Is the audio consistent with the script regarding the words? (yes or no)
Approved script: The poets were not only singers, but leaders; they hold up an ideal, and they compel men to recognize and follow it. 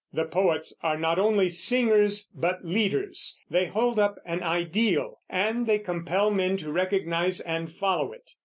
no